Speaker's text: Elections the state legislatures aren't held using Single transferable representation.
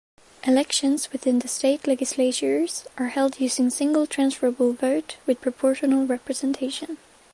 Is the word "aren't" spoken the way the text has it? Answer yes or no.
no